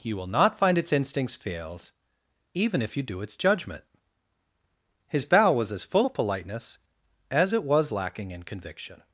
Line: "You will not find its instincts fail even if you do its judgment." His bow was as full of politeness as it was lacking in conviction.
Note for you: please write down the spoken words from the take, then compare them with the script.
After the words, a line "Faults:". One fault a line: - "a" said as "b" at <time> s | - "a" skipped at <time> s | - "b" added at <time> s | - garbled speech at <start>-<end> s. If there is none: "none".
"You will not find its instincts fails even if you do its judgment." His bow was as full of politeness as it was lacking in conviction.
Faults:
- "fail" said as "fails" at 1.4 s